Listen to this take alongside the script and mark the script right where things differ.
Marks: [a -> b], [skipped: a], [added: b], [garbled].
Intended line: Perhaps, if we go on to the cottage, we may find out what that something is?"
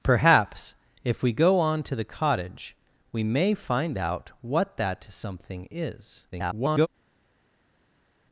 Perhaps, if we go on to the cottage, we may find out what that something is?" [garbled]